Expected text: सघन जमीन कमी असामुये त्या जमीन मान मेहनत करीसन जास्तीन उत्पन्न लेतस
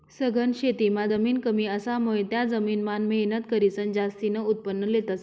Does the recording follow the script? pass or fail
fail